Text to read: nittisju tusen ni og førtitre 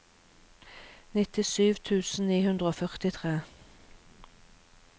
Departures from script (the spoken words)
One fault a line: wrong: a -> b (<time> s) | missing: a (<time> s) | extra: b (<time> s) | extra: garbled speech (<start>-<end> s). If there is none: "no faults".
extra: hundre (2.5 s)